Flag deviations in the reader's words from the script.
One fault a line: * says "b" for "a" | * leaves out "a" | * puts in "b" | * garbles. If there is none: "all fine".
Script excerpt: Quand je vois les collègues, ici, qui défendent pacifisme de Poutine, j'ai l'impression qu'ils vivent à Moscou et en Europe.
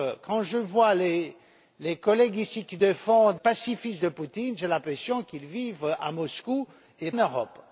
all fine